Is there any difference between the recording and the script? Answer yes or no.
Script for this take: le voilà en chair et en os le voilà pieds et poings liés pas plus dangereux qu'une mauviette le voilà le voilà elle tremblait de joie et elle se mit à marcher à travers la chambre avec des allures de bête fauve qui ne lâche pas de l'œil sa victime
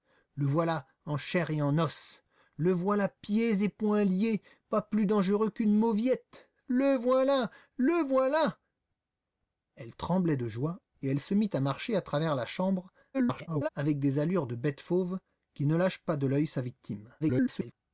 yes